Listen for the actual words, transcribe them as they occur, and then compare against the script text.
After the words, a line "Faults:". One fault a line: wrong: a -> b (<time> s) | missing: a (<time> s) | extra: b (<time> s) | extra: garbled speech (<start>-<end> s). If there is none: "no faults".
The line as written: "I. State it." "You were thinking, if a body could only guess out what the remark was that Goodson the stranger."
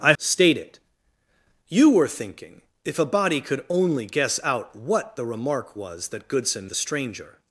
"I. State it." "You were thinking, if a body could only guess out what the remark was that Goodson the stranger."
Faults:
no faults